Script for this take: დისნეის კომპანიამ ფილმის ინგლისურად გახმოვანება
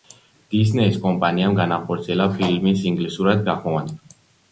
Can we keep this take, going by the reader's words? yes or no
no